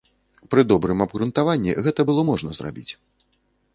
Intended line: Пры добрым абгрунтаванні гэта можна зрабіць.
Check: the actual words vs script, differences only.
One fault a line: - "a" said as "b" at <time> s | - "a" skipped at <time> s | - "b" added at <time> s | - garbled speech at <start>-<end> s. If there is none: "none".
- "было" added at 2.1 s